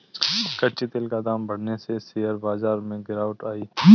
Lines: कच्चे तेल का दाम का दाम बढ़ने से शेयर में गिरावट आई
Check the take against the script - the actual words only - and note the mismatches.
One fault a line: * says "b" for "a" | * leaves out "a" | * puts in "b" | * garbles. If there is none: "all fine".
* leaves out "का दाम"
* puts in "बाजार"